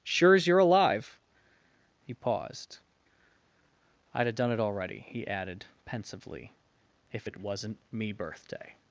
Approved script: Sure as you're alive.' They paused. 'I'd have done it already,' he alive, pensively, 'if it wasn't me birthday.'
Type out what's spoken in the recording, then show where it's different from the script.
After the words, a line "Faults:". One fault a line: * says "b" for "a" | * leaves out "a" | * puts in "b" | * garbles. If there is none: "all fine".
Sure as you're alive.' He paused. 'I'd have done it already,' he added, pensively, 'if it wasn't me birthday.'
Faults:
* says "He" for "They"
* says "added" for "alive"